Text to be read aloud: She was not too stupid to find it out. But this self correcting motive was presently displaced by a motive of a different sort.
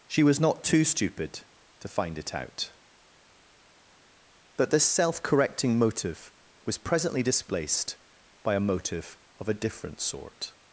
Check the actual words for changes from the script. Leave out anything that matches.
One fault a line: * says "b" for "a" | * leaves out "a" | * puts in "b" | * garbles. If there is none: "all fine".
all fine